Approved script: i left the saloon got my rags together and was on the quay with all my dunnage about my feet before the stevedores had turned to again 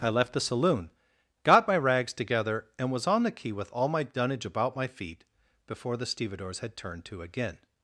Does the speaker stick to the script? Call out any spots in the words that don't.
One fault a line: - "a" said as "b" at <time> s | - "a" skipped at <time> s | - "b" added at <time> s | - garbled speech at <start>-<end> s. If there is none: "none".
none